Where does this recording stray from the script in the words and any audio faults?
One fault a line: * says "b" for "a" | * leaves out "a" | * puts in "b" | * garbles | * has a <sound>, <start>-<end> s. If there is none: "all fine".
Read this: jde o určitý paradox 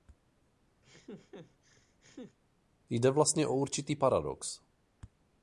* has a laugh, 0.8-2.4 s
* puts in "vlastně"